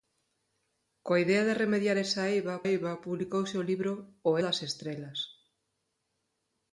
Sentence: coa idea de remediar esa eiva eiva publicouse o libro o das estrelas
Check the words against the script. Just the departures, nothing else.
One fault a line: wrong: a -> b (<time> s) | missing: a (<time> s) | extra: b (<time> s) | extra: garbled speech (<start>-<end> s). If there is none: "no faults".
no faults